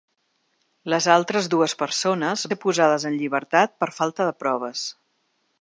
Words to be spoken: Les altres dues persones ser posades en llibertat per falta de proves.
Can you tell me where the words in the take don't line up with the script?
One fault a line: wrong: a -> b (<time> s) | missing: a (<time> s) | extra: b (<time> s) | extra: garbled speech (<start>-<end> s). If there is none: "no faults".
no faults